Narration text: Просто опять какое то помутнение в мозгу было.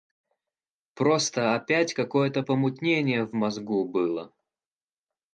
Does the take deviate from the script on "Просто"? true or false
false